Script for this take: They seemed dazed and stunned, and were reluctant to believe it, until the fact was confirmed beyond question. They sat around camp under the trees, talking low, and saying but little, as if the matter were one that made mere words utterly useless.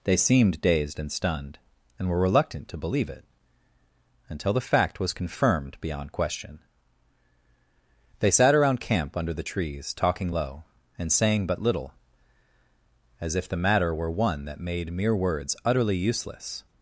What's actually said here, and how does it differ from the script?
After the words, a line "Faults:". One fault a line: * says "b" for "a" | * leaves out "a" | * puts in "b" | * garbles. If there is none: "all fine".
They seemed dazed and stunned, and were reluctant to believe it, until the fact was confirmed beyond question. They sat around camp under the trees, talking low, and saying but little, as if the matter were one that made mere words utterly useless.
Faults:
all fine